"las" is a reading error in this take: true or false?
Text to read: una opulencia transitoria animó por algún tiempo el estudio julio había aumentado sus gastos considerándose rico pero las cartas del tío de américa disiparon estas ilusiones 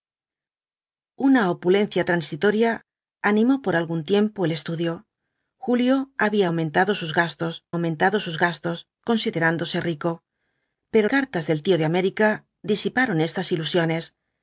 true